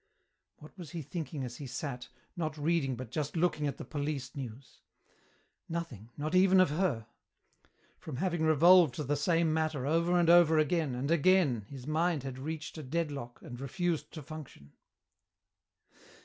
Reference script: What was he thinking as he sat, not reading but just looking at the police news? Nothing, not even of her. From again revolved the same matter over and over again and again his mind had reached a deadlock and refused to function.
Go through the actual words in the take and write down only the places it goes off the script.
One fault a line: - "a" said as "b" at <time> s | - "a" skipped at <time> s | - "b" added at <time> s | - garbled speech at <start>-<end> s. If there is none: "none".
- "again" said as "having" at 8.1 s